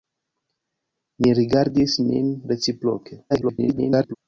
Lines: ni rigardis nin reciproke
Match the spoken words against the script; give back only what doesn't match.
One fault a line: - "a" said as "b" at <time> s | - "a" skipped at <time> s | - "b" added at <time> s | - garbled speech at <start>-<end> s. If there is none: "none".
- garbled speech at 3.3-4.2 s